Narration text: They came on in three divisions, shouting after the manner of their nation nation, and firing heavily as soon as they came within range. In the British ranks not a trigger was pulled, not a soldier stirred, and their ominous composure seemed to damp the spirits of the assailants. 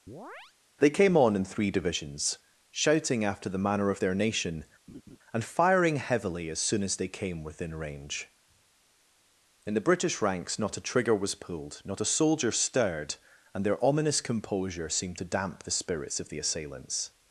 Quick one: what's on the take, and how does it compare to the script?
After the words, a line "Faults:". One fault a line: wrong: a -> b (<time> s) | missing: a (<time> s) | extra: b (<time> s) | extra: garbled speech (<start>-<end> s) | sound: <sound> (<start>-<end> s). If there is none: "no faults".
They came on in three divisions, shouting after the manner of their nation, and firing heavily as soon as they came within range. In the British ranks not a trigger was pulled, not a soldier stirred, and their ominous composure seemed to damp the spirits of the assailants.
Faults:
sound: chirp (0.1-0.5 s)
missing: nation (4.7 s)
sound: laugh (4.9-5.2 s)